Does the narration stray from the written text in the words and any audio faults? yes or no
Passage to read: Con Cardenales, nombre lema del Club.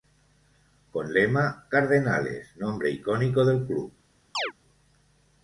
yes